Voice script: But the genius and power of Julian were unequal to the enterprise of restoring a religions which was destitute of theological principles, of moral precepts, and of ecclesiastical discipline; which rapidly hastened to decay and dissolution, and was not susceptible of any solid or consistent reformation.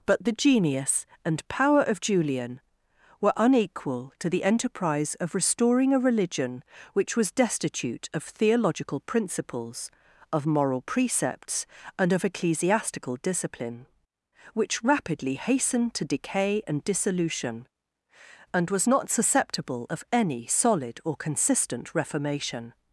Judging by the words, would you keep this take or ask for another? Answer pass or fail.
fail